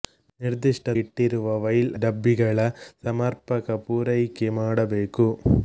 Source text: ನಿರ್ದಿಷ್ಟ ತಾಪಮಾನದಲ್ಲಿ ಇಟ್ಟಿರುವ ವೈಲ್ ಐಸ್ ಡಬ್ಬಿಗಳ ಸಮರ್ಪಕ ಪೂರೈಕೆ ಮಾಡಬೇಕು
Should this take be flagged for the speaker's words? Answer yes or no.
yes